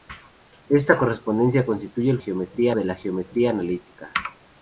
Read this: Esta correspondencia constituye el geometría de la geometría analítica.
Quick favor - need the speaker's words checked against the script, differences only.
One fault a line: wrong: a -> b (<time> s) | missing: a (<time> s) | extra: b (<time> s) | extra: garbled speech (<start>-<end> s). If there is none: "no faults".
no faults